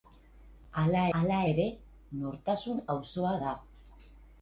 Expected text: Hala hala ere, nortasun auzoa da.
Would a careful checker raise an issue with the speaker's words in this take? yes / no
no